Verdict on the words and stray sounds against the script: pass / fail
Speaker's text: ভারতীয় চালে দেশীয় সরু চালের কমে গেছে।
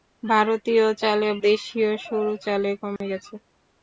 fail